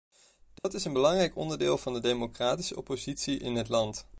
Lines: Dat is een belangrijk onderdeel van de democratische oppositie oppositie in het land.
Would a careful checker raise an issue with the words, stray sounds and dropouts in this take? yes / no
yes